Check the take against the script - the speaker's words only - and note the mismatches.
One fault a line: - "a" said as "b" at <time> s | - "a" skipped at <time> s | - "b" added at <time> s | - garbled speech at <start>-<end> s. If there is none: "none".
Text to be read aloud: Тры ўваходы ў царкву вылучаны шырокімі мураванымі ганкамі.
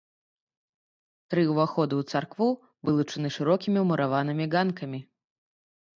none